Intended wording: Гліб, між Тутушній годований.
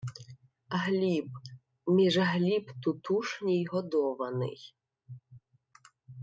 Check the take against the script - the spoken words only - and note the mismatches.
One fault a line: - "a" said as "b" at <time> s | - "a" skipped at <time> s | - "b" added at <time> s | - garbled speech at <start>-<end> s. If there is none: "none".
- "Гліб" added at 2.2 s